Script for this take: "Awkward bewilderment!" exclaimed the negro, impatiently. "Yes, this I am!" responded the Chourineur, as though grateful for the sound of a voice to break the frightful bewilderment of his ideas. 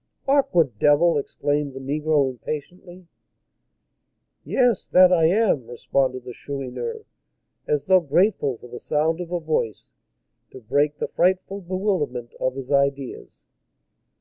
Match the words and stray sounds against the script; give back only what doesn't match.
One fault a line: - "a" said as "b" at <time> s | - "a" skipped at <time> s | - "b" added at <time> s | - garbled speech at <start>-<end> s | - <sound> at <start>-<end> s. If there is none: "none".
- "bewilderment" said as "devil" at 0.8 s
- "this" said as "that" at 4.9 s